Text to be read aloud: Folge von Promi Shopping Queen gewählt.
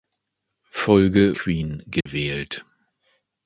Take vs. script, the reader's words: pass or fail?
fail